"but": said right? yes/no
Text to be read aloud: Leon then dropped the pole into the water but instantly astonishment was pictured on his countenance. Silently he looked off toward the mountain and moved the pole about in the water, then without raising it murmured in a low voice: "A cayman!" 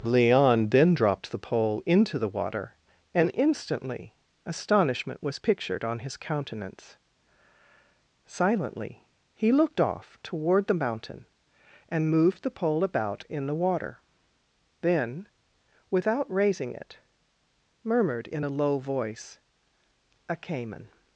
no